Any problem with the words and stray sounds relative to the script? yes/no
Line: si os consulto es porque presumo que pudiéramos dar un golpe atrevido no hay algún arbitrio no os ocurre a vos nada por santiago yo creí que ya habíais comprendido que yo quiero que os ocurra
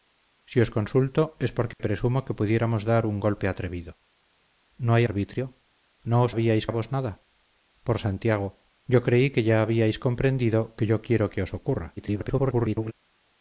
yes